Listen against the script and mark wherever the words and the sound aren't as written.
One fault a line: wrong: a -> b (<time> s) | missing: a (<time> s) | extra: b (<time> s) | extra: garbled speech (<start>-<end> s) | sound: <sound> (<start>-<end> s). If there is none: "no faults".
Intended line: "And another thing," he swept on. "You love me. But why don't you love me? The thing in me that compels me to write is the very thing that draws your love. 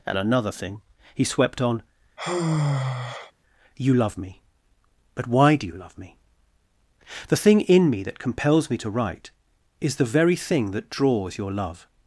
sound: sigh (2.2-3.3 s)
wrong: don't -> do (5.6 s)